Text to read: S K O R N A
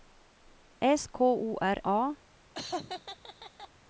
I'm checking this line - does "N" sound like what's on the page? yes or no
no